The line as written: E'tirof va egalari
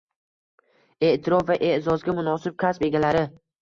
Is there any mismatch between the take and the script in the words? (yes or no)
yes